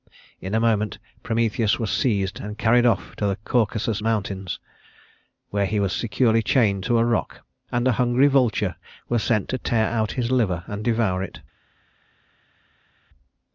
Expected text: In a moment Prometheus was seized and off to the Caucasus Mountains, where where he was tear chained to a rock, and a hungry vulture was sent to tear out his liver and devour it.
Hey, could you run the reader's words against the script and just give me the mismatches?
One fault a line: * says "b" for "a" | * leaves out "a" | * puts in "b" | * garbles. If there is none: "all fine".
* puts in "carried"
* leaves out "where"
* says "securely" for "tear"